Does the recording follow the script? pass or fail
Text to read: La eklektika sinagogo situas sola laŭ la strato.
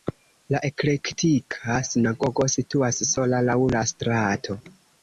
pass